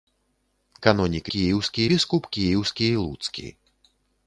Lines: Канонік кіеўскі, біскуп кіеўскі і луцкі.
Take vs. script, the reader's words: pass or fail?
pass